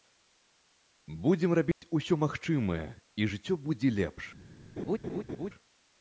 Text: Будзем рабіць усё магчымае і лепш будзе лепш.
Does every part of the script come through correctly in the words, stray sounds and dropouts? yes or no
no